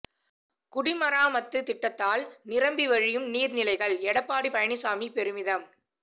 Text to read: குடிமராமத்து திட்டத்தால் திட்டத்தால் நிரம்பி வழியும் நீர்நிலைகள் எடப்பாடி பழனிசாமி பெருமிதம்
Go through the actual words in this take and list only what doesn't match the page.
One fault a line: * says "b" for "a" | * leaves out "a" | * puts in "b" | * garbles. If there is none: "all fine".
* leaves out "திட்டத்தால்"